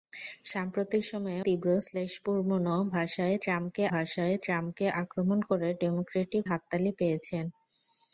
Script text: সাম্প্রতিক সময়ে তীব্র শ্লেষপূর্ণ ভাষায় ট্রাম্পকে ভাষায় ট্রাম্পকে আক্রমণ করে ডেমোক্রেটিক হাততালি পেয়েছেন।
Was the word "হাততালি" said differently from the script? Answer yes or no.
no